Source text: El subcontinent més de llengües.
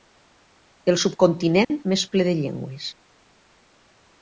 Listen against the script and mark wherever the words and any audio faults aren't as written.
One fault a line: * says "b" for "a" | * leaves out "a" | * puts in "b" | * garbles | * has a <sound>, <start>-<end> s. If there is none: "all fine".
* has a dropout, 1.6-1.7 s
* puts in "ple"